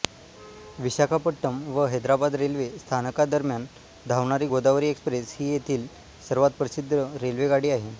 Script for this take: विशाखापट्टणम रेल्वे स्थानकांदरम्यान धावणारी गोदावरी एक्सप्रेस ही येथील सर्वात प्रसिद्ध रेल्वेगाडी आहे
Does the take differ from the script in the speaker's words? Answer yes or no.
yes